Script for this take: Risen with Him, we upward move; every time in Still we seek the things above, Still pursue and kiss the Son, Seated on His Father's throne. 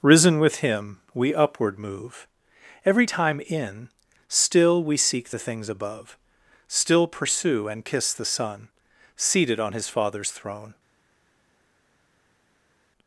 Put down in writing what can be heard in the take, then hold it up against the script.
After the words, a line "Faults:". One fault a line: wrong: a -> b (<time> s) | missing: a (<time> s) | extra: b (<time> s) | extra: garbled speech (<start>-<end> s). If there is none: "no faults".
Risen with Him, we upward move; every time in Still we seek the things above, Still pursue and kiss the Son, Seated on His Father's throne.
Faults:
no faults